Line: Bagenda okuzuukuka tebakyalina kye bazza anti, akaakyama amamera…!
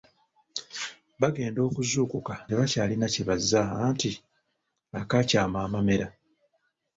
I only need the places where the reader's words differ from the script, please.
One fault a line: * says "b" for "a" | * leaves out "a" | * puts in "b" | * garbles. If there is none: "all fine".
all fine